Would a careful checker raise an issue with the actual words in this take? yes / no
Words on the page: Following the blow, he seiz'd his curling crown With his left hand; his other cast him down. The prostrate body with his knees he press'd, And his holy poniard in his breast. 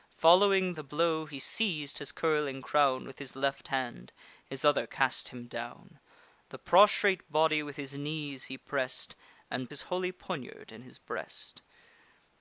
no